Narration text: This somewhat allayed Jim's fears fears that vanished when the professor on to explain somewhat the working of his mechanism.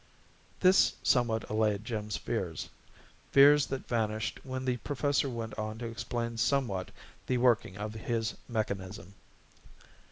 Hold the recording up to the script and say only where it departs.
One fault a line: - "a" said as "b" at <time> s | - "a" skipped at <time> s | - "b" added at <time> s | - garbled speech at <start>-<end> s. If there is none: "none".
- "went" added at 5.3 s